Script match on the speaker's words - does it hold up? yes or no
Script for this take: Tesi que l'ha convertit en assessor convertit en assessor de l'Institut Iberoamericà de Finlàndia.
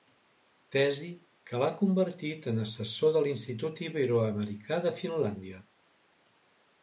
no